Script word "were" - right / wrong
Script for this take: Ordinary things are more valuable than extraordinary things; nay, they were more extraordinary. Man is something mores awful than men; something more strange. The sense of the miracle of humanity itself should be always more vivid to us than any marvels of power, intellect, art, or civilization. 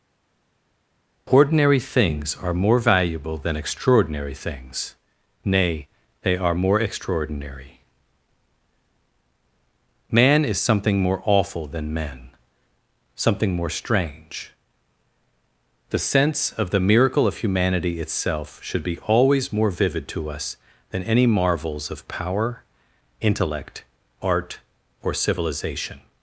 wrong